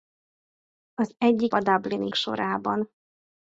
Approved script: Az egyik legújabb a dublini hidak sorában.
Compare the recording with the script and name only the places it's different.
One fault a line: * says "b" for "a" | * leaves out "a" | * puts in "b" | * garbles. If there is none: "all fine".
* leaves out "legújabb"
* leaves out "hidak"